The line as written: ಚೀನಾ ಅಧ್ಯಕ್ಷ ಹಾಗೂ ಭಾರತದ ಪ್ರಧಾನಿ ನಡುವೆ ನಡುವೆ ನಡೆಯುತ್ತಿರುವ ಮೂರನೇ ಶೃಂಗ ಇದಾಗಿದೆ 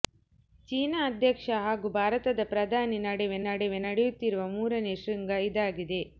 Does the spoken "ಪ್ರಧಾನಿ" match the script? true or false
true